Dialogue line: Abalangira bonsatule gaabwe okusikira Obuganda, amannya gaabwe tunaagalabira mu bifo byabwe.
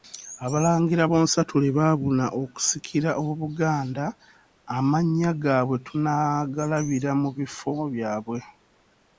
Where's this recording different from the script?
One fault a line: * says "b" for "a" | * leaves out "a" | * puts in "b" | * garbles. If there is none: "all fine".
* says "baabuna" for "gaabwe"